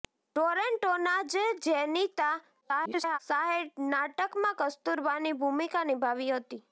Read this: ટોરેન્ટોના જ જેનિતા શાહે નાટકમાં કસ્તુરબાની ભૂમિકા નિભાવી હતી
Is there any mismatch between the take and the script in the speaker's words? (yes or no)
yes